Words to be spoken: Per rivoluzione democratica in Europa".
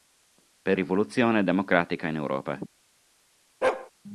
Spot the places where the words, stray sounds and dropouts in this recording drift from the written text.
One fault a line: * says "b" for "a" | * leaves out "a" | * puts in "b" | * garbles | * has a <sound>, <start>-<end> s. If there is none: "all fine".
* has a bark, 3.6-3.9 s